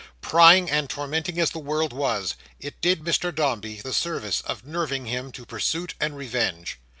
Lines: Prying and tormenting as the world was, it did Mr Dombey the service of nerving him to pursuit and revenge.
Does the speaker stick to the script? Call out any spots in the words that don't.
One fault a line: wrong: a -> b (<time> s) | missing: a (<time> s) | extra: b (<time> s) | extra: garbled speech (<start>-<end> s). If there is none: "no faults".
no faults